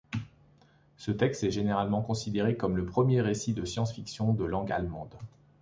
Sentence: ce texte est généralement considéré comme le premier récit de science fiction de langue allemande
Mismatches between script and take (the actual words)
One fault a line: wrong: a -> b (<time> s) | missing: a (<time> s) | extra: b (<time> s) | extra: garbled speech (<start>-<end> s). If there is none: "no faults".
no faults